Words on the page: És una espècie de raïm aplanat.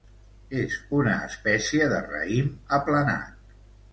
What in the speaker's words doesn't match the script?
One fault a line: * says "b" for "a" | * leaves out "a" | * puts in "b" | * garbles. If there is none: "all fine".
all fine